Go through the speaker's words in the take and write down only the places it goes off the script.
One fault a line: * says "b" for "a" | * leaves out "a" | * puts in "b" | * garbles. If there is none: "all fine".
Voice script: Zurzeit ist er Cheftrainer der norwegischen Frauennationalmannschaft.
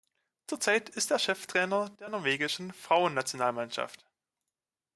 all fine